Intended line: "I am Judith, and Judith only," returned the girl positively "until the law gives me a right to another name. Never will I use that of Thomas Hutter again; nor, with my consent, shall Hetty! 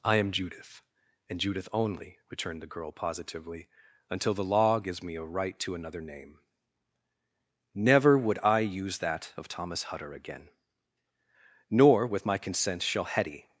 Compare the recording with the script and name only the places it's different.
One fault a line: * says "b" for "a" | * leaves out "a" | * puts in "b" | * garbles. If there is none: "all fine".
* says "would" for "will"